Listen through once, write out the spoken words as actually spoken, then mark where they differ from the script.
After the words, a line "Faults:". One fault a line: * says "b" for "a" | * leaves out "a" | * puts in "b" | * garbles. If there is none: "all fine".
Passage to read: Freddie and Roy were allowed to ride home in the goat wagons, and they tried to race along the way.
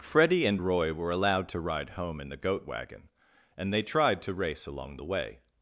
Freddie and Roy were allowed to ride home in the goat wagon, and they tried to race along the way.
Faults:
* says "wagon" for "wagons"